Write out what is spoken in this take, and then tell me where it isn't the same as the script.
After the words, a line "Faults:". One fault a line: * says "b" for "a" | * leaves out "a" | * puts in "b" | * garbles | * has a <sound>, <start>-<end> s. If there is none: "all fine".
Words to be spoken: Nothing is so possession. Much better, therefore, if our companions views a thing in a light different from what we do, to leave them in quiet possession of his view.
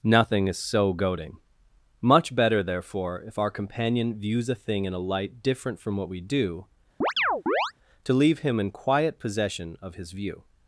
Nothing is so goading. Much better, therefore, if our companion views a thing in a light different from what we do, to leave him in quiet possession of his view.
Faults:
* says "goading" for "possession"
* says "companion" for "companions"
* has a chirp, 7.0-7.7 s
* says "him" for "them"